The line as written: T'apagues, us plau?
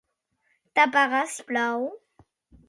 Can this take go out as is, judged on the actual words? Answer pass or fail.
pass